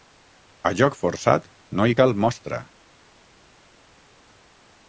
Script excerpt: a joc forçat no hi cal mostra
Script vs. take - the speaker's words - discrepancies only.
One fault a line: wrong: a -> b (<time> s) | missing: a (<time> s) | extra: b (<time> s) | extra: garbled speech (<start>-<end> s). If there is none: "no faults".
no faults